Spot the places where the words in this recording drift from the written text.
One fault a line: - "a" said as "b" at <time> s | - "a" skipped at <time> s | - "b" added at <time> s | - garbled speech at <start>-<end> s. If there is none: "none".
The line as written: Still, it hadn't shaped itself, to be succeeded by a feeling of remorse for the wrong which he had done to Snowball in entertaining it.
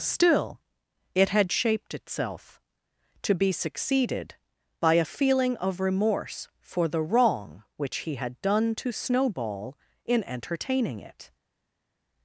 - "hadn't" said as "had" at 1.3 s